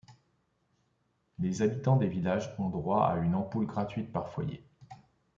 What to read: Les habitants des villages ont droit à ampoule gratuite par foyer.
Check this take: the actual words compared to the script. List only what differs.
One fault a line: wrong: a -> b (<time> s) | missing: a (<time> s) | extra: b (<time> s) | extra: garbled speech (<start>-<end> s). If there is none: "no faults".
extra: une (3.2 s)